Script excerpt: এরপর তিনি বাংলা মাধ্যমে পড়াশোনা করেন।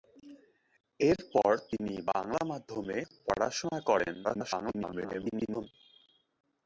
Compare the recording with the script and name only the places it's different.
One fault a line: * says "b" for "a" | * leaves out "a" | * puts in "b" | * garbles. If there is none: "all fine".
* garbles